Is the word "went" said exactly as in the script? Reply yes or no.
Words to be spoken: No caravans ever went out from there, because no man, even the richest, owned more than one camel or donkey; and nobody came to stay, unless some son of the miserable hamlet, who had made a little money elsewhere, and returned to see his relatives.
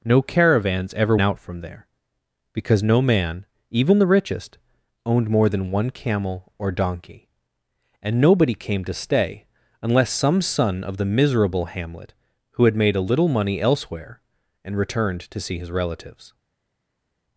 no